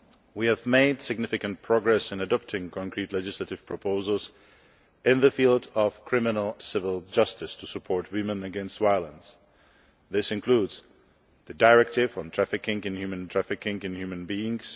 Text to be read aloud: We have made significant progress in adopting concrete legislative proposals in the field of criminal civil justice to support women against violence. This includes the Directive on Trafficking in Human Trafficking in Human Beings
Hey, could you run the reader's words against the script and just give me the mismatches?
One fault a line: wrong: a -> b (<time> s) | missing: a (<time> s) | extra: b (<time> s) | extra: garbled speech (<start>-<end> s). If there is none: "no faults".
no faults